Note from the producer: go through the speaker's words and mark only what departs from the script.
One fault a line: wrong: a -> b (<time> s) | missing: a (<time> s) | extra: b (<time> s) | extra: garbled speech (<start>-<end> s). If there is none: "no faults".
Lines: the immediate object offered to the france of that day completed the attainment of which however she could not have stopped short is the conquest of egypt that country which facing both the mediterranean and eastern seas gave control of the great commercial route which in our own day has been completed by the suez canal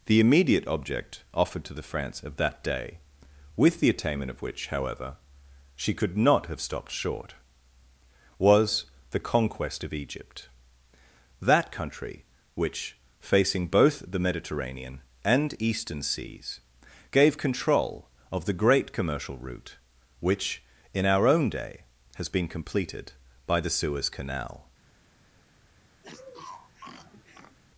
wrong: completed -> with (3.6 s)
wrong: is -> was (8.4 s)